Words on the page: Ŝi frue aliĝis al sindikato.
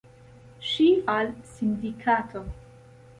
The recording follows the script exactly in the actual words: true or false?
false